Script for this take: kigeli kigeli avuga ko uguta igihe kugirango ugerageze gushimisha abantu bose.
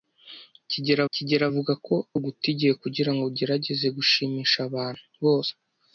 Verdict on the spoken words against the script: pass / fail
pass